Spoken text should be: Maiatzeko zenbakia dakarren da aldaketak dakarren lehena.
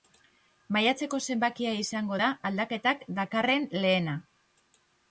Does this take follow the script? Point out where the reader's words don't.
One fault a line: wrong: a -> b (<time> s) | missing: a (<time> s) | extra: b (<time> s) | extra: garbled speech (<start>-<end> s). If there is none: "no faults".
wrong: dakarren -> izango (1.8 s)